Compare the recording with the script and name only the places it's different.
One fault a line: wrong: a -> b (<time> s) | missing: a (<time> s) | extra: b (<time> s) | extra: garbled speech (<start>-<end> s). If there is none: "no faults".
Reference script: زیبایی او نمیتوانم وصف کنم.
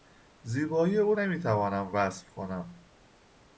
no faults